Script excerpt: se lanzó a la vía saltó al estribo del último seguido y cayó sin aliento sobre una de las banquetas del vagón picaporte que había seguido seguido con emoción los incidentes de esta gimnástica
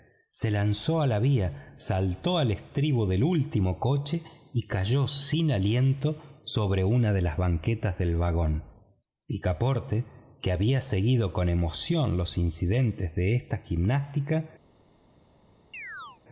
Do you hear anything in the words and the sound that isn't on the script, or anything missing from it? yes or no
yes